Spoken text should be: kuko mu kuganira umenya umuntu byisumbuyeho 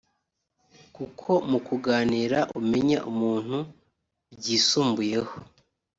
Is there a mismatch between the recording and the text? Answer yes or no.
no